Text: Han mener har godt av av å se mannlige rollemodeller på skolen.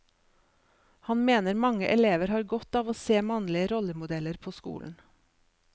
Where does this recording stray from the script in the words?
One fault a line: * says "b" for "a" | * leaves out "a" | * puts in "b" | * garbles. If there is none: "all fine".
* puts in "mange elever"
* leaves out "av"